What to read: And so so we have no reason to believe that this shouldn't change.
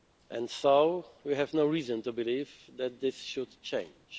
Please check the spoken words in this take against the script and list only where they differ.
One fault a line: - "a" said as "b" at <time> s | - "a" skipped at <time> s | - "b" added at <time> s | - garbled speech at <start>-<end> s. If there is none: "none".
- "so" skipped at 1.1 s
- "shouldn't" said as "should" at 3.2 s